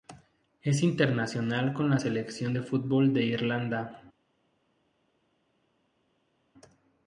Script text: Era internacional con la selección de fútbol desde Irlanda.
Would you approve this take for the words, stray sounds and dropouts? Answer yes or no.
no